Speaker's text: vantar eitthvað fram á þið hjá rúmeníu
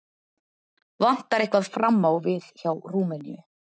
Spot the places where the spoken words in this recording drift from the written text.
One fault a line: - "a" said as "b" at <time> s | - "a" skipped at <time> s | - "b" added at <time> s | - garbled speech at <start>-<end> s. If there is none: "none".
- "þið" said as "við" at 2.3 s